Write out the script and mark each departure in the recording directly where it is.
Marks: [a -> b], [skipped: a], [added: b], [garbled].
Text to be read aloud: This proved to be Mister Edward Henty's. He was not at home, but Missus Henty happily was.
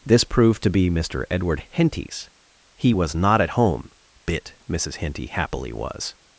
This proved to be Mister Edward Henty's. He was not at home, [but -> bit] Missus Henty happily was.